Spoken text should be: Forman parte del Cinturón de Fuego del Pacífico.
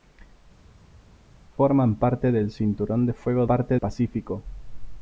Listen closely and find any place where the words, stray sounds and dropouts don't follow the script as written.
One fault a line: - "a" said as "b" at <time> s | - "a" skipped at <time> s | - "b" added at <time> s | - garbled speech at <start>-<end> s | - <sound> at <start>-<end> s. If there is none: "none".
- "del" said as "parte" at 3.4 s